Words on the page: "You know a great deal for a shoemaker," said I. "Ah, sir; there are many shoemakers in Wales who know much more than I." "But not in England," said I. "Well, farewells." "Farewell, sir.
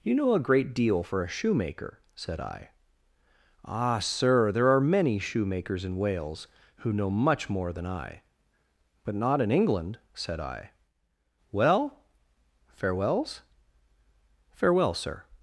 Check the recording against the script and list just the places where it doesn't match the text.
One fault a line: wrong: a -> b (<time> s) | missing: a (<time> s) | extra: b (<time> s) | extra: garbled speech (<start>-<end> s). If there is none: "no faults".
no faults